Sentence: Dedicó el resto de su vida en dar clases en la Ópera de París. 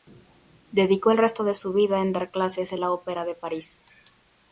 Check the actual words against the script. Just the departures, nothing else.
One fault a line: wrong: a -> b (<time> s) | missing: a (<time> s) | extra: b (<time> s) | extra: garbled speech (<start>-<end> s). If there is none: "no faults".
no faults